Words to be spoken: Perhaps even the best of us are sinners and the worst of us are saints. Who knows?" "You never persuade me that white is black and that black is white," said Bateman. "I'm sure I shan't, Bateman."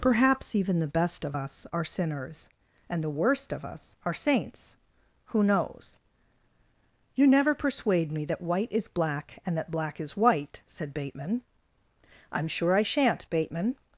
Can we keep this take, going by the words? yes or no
yes